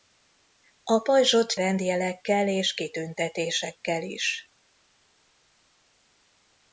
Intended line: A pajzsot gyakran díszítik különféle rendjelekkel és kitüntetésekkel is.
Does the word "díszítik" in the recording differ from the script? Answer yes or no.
yes